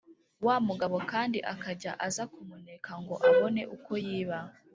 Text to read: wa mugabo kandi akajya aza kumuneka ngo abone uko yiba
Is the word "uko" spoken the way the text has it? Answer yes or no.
yes